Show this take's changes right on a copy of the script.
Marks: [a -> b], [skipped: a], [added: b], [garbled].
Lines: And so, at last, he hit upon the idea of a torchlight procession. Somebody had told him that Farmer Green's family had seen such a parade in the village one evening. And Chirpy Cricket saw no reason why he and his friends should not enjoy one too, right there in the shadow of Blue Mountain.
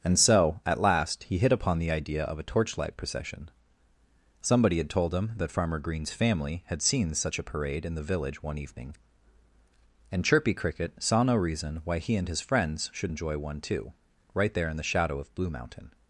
And so, at last, he hit upon the idea of a torchlight procession. Somebody had told him that Farmer Green's family had seen such a parade in the village one evening. And Chirpy Cricket saw no reason why he and his friends should [skipped: not] enjoy one too, right there in the shadow of Blue Mountain.